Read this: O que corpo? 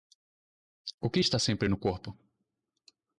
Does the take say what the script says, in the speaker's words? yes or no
no